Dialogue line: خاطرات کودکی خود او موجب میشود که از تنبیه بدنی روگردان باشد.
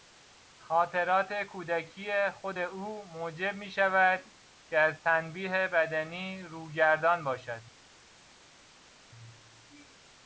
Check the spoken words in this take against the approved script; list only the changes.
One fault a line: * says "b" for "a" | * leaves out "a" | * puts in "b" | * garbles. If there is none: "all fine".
all fine